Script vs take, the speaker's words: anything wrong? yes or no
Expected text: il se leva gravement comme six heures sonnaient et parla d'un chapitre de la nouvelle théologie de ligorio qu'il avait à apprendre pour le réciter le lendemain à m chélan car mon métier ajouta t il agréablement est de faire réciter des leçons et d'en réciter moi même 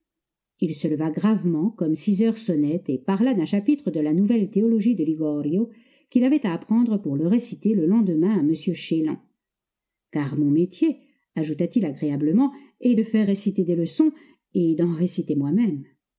no